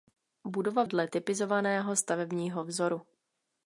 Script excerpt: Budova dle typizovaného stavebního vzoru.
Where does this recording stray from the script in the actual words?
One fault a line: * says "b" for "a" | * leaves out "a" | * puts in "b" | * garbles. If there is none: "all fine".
all fine